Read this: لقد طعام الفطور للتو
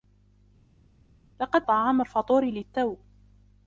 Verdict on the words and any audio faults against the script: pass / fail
pass